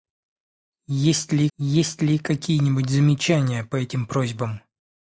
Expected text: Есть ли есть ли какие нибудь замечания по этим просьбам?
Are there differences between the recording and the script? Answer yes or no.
no